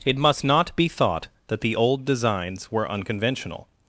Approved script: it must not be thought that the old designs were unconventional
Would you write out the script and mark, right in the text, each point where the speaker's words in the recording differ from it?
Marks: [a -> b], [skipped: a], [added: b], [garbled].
it must not be thought that the old designs were unconventional